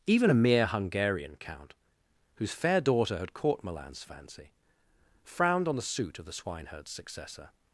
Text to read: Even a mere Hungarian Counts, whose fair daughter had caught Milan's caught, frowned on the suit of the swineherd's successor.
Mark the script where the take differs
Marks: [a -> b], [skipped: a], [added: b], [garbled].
Even a mere Hungarian [Counts, -> Count] whose fair daughter had caught Milan's [caught, -> fancy] frowned on the suit of the swineherd's successor.